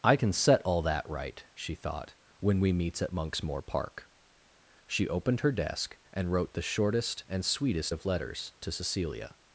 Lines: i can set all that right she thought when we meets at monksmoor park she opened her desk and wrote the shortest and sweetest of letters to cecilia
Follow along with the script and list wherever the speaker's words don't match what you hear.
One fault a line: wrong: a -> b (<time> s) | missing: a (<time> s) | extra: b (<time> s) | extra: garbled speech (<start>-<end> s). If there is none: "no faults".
no faults